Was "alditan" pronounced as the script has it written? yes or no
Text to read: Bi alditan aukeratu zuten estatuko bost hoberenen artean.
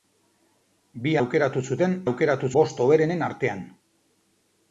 no